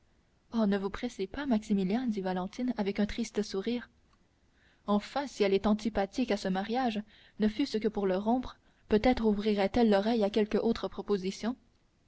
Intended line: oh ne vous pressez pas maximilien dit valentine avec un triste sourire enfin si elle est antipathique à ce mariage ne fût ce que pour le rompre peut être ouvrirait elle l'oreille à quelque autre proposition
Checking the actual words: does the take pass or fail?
pass